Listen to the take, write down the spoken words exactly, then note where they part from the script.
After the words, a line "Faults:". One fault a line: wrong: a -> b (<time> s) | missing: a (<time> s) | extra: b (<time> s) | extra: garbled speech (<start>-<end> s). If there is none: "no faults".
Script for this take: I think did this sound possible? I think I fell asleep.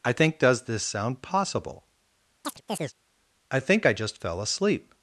I think does this sound possible? I think I just fell asleep.
Faults:
wrong: did -> does (0.4 s)
extra: just (3.9 s)